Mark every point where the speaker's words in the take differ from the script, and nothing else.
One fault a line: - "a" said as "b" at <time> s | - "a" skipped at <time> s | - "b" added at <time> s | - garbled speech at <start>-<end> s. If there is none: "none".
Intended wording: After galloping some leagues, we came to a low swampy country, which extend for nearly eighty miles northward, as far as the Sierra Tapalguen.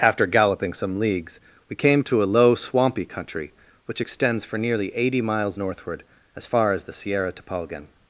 - "extend" said as "extends" at 4.0 s